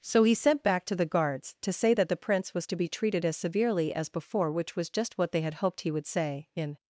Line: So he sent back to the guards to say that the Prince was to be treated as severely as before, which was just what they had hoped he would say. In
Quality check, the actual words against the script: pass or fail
pass